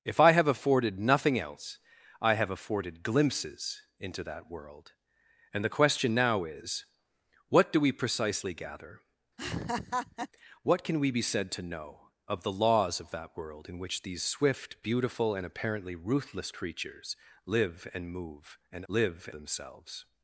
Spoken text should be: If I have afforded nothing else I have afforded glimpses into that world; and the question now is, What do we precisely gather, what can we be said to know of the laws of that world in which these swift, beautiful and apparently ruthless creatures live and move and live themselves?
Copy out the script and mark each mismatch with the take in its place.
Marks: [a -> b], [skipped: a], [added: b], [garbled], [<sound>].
If I have afforded nothing else I have afforded glimpses into that world; and the question now is, What do we precisely gather, [laugh] what can we be said to know of the laws of that world in which these swift, beautiful and apparently ruthless creatures live and move and live themselves?